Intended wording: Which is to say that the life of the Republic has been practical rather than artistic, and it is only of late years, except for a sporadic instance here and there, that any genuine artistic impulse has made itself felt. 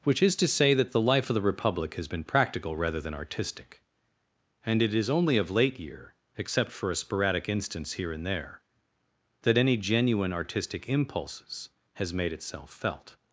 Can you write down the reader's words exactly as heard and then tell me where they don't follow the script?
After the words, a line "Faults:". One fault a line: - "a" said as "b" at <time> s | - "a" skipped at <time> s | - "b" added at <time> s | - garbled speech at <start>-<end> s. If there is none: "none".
Which is to say that the life of the Republic has been practical rather than artistic, and it is only of late year, except for a sporadic instance here and there, that any genuine artistic impulses has made itself felt.
Faults:
- "years" said as "year" at 5.8 s
- "impulse" said as "impulses" at 10.9 s